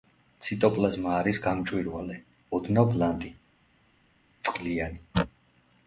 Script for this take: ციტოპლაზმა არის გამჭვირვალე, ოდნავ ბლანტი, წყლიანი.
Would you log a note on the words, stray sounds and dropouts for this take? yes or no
no